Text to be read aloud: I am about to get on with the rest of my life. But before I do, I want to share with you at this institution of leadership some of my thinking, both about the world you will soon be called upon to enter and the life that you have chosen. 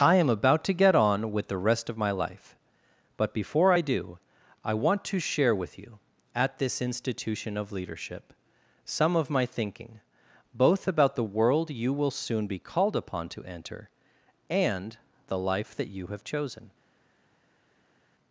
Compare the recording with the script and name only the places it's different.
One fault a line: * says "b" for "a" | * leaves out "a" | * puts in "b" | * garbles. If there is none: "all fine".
all fine